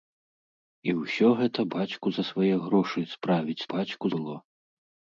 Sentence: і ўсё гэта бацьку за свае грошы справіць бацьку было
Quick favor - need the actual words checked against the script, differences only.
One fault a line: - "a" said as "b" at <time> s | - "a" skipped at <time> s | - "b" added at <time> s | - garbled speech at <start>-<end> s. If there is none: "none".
none